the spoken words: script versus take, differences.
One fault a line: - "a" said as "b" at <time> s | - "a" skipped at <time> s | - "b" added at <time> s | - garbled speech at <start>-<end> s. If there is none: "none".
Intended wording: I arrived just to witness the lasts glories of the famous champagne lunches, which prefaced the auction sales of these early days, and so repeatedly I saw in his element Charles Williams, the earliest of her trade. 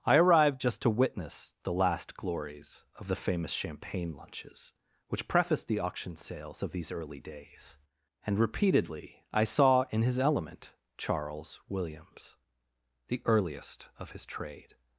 - "lasts" said as "last" at 1.7 s
- "so" skipped at 8.4 s
- "her" said as "his" at 14.1 s